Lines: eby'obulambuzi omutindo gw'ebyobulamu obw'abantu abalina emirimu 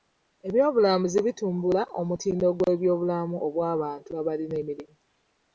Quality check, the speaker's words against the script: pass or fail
fail